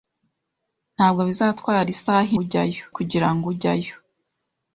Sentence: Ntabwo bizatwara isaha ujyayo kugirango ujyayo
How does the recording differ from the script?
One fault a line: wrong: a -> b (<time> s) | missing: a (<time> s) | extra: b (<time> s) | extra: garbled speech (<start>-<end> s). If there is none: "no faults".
no faults